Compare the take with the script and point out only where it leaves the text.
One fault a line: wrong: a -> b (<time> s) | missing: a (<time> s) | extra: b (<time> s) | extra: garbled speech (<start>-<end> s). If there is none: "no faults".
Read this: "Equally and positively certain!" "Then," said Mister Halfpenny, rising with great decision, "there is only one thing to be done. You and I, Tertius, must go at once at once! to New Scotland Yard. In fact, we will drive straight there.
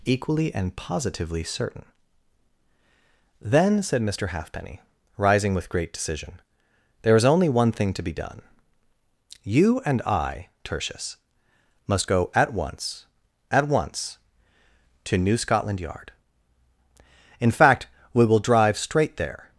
no faults